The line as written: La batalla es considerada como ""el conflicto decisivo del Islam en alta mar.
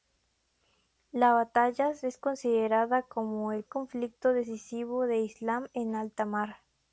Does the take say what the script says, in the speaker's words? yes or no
yes